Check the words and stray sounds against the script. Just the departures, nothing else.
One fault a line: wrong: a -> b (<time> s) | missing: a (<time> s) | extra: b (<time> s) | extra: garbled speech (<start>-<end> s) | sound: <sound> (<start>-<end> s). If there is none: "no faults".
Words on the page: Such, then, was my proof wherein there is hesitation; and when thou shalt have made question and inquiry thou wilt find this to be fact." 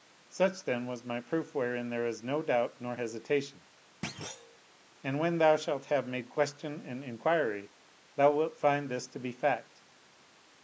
extra: no doubt nor (2.2 s)
sound: thud (4.0-4.6 s)